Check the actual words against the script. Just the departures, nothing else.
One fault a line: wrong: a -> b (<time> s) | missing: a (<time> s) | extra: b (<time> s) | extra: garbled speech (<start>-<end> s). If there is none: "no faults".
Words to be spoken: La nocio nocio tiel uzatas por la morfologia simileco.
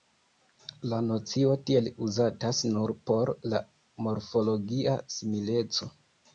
missing: nocio (1.5 s)
extra: nur (2.8 s)